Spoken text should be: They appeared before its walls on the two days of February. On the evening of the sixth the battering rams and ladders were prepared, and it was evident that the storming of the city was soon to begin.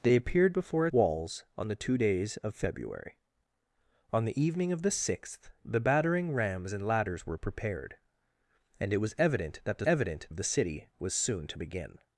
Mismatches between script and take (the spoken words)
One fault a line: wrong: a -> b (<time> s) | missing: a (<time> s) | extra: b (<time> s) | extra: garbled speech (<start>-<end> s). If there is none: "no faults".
missing: its (0.9 s)
wrong: storming -> evident (9.8 s)